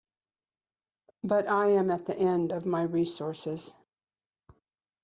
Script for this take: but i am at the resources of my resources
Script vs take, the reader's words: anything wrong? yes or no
yes